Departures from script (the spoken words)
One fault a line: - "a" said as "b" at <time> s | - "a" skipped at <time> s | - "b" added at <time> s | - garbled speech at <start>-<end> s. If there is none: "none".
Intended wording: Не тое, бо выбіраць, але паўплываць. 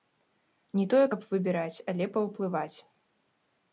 - "бо" said as "каб" at 1.1 s